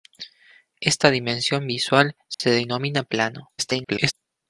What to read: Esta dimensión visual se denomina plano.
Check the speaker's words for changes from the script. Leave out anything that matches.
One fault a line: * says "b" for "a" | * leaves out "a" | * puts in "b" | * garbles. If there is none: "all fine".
* garbles